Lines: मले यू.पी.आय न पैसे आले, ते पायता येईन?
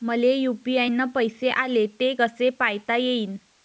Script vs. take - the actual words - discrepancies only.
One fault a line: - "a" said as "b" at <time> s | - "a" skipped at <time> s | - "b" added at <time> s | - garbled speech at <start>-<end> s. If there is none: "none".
- "कसे" added at 2.2 s